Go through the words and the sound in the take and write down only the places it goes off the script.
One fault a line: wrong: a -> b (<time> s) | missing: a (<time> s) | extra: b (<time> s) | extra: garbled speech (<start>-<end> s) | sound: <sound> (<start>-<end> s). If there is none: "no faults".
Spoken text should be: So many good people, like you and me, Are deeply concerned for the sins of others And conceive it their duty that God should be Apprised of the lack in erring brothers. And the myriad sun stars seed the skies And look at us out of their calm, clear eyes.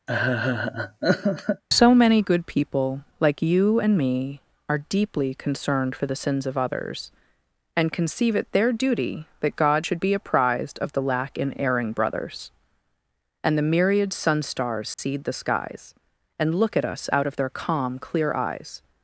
sound: laugh (0.1-1.6 s)
sound: dropout (14.9-15.0 s)